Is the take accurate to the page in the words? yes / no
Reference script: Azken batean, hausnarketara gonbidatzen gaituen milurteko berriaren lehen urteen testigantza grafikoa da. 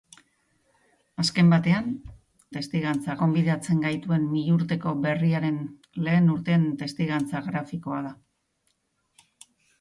no